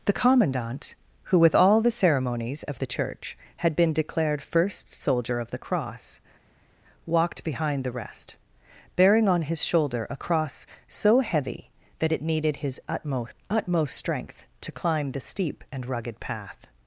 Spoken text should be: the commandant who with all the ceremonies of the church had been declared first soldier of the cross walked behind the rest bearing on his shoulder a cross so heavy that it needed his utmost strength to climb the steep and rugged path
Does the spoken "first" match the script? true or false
true